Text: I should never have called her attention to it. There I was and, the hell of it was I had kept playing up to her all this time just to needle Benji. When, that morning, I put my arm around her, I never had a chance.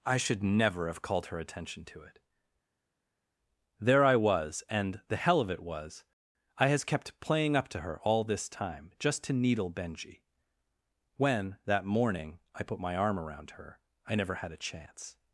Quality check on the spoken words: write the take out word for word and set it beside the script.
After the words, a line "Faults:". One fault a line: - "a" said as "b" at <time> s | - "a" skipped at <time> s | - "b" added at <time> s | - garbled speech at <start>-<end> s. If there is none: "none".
I should never have called her attention to it. There I was and, the hell of it was I has kept playing up to her all this time just to needle Benji. When, that morning, I put my arm around her, I never had a chance.
Faults:
- "had" said as "has" at 6.7 s